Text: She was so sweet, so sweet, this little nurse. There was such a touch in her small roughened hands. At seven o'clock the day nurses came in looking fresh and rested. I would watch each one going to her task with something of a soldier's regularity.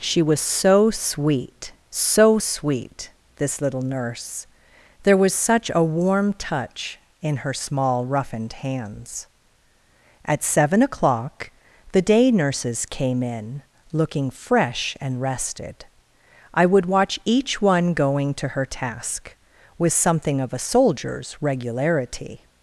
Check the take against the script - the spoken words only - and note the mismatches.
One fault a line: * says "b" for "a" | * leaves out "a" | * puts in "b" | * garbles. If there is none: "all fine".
* puts in "warm"